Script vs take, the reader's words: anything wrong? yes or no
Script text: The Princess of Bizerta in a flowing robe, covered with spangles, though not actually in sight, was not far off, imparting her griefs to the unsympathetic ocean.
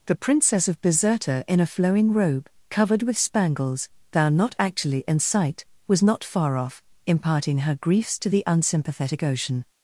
yes